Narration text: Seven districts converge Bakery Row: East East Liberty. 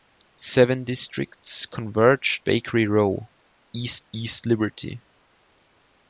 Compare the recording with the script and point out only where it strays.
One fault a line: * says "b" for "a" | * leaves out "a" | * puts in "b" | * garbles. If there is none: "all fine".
all fine